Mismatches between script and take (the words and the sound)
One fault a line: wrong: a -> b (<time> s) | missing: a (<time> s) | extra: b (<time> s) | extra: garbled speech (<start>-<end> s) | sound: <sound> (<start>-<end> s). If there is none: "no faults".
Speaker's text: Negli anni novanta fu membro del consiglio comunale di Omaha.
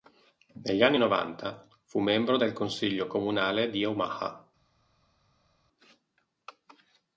no faults